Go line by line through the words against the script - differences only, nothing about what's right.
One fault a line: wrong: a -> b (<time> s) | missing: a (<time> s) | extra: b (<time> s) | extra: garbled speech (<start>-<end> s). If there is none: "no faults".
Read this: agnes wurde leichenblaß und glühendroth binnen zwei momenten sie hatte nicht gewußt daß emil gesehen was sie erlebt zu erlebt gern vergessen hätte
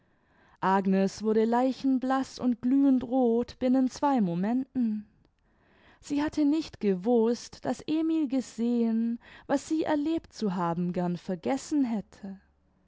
wrong: erlebt -> haben (10.6 s)